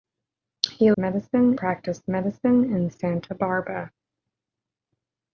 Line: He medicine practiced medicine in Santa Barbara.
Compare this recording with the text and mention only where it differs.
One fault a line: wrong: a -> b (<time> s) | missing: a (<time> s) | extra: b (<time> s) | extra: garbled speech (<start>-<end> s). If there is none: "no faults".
no faults